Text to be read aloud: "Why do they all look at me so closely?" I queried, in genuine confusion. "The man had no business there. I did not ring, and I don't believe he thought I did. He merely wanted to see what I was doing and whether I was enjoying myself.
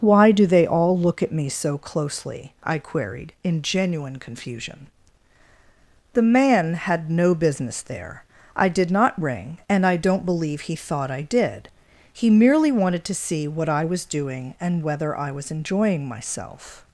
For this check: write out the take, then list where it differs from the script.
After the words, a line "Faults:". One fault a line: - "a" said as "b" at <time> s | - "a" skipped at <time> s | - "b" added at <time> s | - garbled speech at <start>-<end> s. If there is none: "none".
"Why do they all look at me so closely?" I queried, in genuine confusion. "The man had no business there. I did not ring, and I don't believe he thought I did. He merely wanted to see what I was doing and whether I was enjoying myself.
Faults:
none